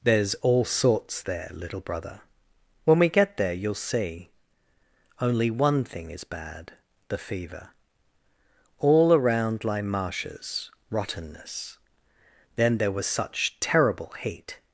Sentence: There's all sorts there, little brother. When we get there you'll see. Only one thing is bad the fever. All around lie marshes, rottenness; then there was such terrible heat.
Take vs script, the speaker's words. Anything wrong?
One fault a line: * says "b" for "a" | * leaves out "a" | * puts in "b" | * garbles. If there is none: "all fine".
all fine